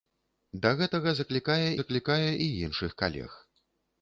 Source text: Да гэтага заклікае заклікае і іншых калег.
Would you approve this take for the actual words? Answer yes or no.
yes